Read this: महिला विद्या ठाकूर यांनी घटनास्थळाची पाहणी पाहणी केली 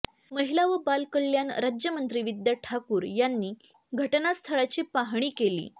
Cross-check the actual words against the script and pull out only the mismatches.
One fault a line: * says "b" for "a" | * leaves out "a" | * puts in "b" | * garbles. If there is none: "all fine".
* puts in "व बालकल्याण राज्यमंत्री"
* leaves out "पाहणी"